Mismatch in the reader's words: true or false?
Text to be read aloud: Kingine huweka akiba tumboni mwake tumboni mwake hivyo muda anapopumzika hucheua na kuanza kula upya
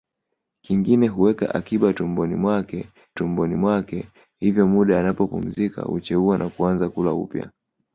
false